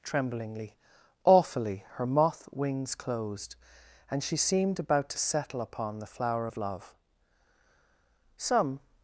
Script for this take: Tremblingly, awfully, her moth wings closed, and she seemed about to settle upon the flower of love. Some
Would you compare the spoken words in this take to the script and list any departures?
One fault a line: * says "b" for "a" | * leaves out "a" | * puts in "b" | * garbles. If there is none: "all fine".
all fine